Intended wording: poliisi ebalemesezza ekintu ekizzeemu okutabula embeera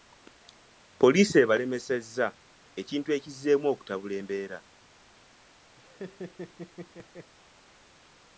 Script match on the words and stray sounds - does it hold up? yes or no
no